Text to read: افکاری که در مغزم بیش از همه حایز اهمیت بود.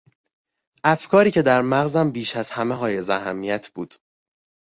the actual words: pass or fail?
pass